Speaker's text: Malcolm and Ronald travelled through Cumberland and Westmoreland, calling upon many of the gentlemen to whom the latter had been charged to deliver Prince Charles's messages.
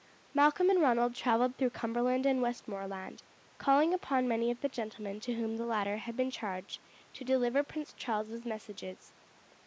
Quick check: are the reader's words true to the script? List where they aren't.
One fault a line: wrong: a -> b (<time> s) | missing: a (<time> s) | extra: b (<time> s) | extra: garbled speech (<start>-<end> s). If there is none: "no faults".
no faults